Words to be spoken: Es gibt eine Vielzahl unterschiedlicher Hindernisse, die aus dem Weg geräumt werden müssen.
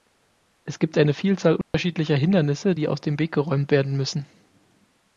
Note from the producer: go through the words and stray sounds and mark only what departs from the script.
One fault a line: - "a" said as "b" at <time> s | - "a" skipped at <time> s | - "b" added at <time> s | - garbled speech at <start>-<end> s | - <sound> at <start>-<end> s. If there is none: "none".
- dropout at 1.6-1.7 s